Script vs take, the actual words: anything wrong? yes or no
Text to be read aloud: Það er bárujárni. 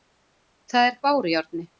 no